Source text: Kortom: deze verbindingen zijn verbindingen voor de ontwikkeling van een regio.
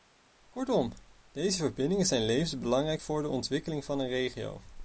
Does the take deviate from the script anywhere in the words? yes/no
yes